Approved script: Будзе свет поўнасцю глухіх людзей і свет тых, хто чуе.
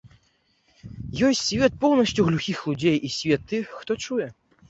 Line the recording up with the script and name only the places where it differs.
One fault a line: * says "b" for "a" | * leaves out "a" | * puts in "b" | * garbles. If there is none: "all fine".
* says "Ёсць" for "Будзе"